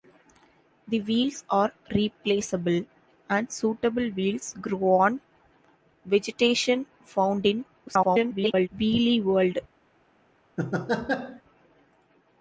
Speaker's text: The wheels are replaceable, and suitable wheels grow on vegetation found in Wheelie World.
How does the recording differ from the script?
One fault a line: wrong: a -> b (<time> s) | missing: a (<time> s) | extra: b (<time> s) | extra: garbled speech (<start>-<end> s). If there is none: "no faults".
extra: garbled speech (7.9-8.7 s)